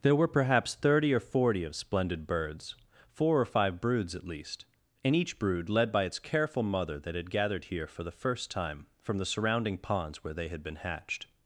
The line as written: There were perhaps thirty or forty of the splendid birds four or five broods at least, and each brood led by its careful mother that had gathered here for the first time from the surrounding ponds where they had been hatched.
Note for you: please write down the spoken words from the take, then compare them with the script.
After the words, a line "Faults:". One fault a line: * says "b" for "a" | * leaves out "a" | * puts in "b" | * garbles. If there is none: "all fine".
There were perhaps thirty or forty of splendid birds four or five broods at least, and each brood led by its careful mother that had gathered here for the first time from the surrounding ponds where they had been hatched.
Faults:
* leaves out "the"